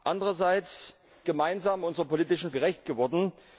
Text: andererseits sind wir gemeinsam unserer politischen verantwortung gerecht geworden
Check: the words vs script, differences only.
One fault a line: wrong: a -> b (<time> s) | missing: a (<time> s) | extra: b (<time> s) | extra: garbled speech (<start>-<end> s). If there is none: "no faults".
missing: sind (1.0 s)
missing: verantwortung (2.5 s)